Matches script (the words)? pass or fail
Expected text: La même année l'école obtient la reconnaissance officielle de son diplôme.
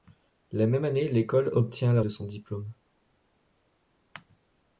fail